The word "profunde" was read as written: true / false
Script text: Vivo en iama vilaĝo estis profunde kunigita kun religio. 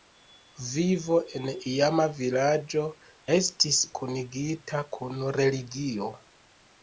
false